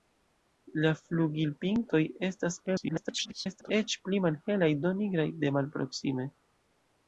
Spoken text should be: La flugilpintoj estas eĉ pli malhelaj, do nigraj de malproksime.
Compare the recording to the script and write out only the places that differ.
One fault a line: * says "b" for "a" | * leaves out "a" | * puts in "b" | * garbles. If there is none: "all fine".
* garbles